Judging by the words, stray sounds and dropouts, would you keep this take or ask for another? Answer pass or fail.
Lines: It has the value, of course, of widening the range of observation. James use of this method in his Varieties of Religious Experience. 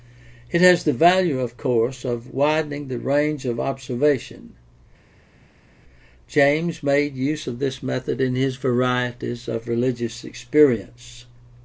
fail